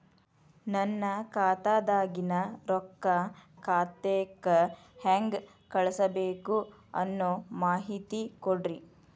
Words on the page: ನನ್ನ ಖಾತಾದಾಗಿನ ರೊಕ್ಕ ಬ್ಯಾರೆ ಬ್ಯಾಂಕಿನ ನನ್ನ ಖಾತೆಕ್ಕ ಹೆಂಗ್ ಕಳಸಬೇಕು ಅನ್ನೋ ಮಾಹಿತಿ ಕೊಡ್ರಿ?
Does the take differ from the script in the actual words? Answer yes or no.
yes